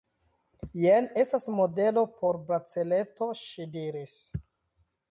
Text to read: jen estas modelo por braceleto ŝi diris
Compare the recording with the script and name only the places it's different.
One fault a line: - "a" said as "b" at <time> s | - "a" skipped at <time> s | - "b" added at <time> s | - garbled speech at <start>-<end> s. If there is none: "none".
none